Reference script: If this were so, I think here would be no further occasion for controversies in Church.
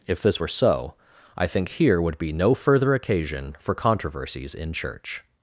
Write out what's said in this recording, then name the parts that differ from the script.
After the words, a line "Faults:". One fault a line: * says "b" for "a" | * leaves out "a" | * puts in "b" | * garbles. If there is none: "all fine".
If this were so, I think here would be no further occasion for controversies in Church.
Faults:
all fine